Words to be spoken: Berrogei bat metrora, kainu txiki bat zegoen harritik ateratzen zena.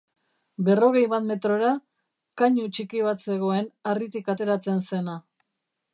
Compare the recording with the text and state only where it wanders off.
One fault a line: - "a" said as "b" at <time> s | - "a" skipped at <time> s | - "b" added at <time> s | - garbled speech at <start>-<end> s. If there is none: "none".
none